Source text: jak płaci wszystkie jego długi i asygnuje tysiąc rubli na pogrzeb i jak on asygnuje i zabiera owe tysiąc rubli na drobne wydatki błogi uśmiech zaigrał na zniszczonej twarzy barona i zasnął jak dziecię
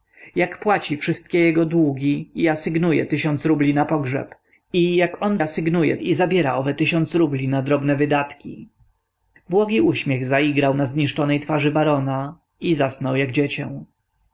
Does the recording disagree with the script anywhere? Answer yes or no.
no